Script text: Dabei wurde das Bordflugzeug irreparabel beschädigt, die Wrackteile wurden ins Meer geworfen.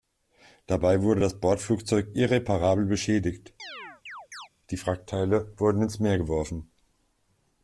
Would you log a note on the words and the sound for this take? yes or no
yes